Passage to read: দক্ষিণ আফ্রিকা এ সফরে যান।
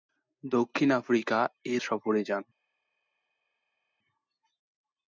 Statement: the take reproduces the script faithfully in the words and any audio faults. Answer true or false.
true